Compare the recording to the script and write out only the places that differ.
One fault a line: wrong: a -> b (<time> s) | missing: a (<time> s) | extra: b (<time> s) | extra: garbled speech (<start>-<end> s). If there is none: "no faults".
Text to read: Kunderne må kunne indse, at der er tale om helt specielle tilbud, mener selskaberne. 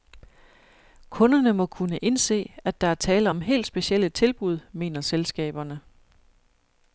no faults